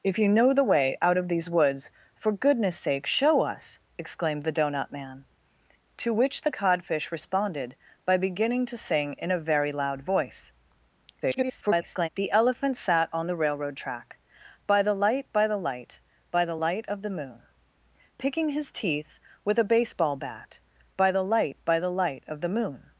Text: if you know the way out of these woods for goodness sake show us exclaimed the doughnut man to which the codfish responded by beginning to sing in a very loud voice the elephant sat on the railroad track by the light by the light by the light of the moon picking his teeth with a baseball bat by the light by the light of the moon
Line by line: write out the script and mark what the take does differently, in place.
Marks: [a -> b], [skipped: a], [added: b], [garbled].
if you know the way out of these woods for goodness sake show us exclaimed the doughnut man to which the codfish responded by beginning to sing in a very loud voice [garbled] the elephant sat on the railroad track by the light by the light by the light of the moon picking his teeth with a baseball bat by the light by the light of the moon